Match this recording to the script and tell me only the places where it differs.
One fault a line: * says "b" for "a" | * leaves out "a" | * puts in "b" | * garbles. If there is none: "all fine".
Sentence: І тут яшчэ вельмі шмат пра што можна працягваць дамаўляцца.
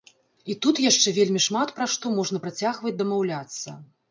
all fine